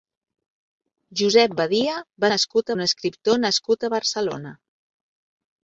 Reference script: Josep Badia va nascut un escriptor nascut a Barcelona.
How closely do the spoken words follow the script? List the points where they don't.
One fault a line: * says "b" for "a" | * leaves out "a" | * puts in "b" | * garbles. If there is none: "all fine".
all fine